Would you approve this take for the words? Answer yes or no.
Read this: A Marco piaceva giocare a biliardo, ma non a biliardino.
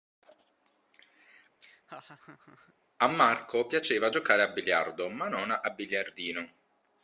yes